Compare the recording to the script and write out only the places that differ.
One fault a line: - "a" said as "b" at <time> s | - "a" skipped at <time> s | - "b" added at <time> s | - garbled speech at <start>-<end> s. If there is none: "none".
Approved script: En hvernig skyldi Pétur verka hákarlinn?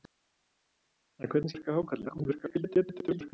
- "skyldi Pétur" skipped at 1.5 s
- garbled speech at 2.0-3.3 s